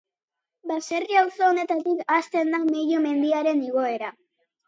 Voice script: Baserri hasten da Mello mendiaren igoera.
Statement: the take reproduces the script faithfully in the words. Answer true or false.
false